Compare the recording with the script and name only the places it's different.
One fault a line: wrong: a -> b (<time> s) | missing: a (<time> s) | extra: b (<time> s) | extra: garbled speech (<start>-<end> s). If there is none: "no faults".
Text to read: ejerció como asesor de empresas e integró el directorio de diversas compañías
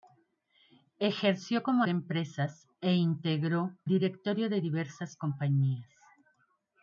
missing: asesor (1.8 s)
missing: el (3.8 s)